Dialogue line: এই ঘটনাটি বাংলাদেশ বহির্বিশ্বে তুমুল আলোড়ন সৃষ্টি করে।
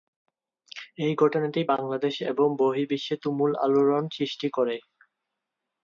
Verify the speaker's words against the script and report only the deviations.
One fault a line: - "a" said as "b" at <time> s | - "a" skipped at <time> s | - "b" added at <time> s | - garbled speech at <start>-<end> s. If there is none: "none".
- "এবং" added at 2.3 s